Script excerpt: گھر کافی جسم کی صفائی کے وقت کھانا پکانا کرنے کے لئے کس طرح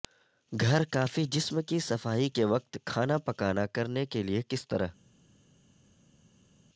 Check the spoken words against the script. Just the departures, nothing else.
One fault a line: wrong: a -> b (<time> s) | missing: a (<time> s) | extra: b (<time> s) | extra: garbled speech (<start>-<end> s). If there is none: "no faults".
no faults